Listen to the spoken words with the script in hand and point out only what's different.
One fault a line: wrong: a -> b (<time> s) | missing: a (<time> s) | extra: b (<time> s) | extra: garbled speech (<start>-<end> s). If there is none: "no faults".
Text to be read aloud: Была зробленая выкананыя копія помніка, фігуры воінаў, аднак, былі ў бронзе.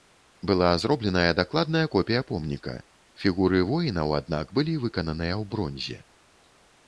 wrong: выкананыя -> дакладная (1.4 s)
extra: выкананыя (4.9 s)